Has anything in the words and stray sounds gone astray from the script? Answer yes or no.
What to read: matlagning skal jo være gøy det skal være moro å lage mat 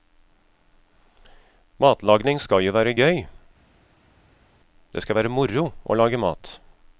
no